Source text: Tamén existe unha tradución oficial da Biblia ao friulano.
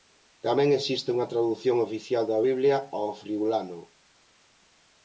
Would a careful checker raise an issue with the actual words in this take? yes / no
no